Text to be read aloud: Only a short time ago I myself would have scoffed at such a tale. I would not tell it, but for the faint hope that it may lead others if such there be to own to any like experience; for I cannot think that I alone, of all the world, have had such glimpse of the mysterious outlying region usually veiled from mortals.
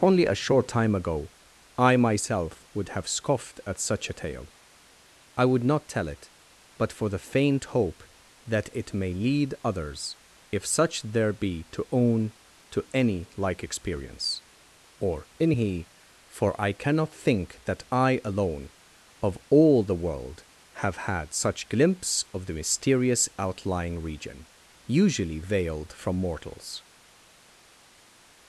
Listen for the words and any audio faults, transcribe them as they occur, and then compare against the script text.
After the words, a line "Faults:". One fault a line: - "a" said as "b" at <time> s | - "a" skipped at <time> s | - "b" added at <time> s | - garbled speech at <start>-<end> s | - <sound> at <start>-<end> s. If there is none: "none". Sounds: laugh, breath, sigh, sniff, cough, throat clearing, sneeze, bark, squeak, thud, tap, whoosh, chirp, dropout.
Only a short time ago I myself would have scoffed at such a tale. I would not tell it, but for the faint hope that it may lead others if such there be to own to any like experience; or in he for I cannot think that I alone, of all the world, have had such glimpse of the mysterious outlying region usually veiled from mortals.
Faults:
- "or in he" added at 15.0 s